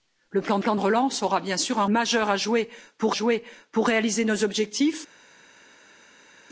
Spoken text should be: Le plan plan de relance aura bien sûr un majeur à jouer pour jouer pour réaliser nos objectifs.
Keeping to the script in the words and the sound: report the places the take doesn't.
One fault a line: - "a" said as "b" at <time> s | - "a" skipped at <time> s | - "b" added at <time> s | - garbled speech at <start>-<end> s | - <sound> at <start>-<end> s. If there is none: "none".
none